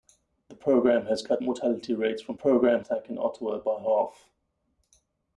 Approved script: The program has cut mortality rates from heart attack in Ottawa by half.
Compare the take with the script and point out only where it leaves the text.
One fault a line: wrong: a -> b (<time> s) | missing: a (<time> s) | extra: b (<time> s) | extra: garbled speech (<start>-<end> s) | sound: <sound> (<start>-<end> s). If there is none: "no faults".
wrong: heart -> program (2.3 s)